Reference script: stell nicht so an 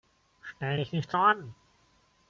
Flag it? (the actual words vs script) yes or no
yes